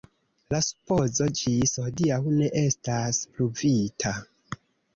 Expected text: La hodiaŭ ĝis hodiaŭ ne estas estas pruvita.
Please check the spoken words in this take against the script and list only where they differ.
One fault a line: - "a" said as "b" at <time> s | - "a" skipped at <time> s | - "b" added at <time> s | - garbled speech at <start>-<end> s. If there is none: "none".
- "hodiaŭ" said as "supozo" at 0.6 s
- "estas" skipped at 3.2 s